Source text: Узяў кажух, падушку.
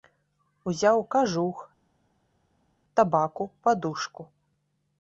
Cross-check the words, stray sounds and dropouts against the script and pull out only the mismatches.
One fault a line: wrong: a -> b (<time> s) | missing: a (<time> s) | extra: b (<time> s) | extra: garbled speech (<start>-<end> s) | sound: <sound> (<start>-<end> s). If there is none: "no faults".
extra: табаку (3.0 s)